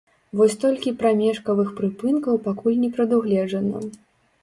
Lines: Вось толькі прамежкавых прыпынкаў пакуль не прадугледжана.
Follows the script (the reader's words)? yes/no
yes